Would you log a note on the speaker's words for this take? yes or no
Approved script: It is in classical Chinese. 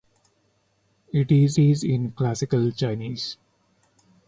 yes